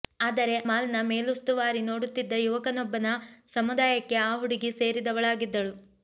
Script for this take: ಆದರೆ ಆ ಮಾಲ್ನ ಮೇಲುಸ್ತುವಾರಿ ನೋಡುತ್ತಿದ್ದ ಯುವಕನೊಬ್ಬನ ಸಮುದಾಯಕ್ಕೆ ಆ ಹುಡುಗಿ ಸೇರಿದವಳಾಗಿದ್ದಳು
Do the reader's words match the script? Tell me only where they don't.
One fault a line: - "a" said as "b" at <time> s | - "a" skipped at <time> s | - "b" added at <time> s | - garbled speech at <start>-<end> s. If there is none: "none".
- "ಆ" skipped at 0.6 s